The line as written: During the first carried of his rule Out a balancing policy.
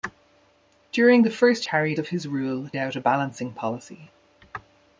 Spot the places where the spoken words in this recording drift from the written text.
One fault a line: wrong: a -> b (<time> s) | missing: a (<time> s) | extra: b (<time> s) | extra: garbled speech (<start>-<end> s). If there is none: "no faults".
no faults